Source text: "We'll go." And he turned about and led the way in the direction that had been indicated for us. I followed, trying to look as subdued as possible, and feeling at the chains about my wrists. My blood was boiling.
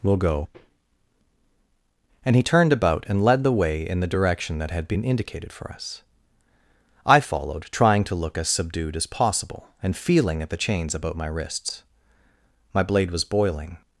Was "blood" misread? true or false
true